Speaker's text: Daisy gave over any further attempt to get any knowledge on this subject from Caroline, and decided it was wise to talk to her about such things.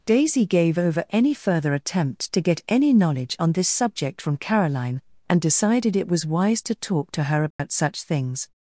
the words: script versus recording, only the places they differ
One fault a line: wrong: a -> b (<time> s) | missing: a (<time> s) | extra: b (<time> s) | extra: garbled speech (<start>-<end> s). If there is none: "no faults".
no faults